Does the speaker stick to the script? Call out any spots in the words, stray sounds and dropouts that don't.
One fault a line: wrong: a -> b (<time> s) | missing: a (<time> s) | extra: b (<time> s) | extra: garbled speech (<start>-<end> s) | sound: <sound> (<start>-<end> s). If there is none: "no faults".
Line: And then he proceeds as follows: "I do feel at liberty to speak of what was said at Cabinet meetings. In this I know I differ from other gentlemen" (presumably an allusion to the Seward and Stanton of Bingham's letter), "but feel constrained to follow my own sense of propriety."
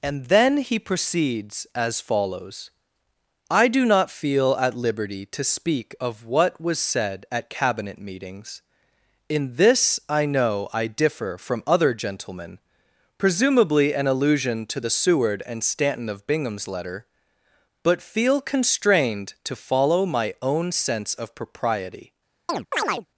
extra: not (3.9 s)
sound: chirp (22.5-23.1 s)